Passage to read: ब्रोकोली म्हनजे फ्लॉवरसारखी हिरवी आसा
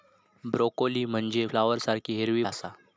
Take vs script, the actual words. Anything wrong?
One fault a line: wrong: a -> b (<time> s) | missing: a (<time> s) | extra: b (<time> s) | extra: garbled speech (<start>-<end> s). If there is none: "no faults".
no faults